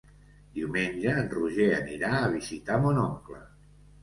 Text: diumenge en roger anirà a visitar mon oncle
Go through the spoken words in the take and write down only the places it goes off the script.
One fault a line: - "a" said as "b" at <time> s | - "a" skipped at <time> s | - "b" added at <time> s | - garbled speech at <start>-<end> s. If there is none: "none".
none